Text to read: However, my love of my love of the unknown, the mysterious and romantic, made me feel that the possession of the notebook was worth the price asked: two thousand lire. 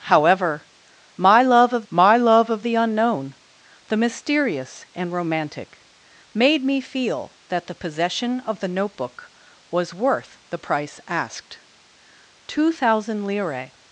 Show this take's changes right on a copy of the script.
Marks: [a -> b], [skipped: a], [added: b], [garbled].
However, my love of my love of the unknown, the mysterious and romantic, made me feel that the possession of the notebook was worth the price asked: two thousand lire.